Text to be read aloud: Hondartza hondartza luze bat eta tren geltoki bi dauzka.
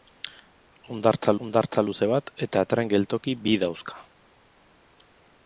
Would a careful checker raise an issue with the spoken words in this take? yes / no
no